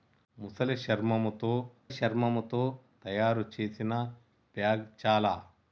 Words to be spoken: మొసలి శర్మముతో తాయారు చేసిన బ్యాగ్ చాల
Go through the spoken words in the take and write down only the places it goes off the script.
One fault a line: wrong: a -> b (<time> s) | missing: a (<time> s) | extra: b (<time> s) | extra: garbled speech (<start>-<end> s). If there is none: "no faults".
extra: శర్మముతో (1.9 s)